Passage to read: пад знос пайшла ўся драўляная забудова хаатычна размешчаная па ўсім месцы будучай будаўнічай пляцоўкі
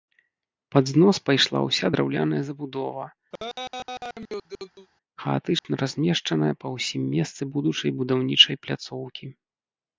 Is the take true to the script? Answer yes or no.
yes